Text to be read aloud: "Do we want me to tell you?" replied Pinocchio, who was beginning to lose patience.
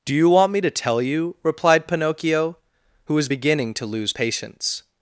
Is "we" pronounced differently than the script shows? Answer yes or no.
yes